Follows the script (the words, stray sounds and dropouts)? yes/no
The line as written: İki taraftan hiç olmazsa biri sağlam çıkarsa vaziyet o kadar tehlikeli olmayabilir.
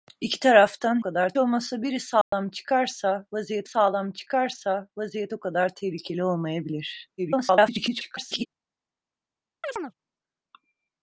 no